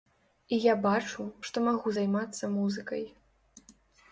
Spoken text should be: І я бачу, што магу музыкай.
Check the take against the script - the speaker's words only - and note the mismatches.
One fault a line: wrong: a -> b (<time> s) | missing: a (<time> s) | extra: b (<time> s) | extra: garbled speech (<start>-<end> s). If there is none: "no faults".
extra: займацца (2.0 s)